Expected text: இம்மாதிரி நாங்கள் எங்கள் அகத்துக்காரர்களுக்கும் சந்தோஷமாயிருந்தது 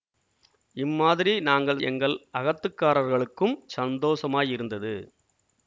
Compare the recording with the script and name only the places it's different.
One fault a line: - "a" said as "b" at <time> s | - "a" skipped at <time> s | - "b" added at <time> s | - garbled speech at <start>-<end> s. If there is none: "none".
none